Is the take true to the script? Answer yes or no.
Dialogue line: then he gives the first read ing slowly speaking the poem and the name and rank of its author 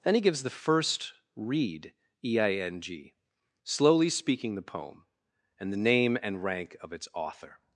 no